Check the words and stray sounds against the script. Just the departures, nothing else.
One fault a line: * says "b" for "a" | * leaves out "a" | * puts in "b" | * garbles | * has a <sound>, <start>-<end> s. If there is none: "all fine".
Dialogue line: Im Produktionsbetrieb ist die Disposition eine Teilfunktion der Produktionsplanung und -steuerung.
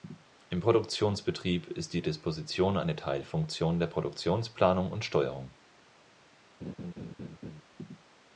* has a laugh, 6.6-7.6 s